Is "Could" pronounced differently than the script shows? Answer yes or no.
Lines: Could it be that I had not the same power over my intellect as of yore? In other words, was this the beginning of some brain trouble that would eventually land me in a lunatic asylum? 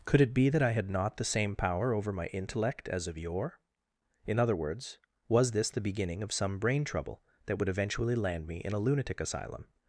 no